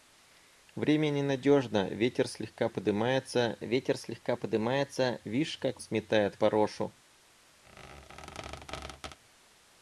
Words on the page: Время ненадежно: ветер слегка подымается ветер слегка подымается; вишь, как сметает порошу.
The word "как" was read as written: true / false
true